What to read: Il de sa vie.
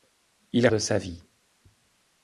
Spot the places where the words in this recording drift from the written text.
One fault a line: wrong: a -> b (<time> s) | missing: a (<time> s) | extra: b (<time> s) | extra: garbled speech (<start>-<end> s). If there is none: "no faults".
no faults